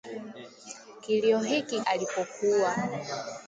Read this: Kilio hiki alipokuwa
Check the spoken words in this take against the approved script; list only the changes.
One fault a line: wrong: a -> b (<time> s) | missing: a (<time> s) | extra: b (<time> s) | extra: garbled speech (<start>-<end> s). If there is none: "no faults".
no faults